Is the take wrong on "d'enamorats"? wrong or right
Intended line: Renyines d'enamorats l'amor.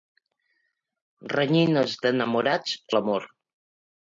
right